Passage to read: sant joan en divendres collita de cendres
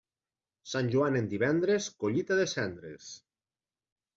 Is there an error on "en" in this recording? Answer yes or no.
no